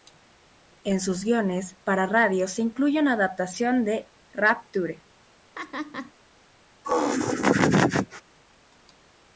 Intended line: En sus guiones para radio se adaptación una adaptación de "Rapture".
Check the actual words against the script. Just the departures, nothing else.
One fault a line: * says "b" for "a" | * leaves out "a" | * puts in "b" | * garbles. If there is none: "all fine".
* says "incluye" for "adaptación"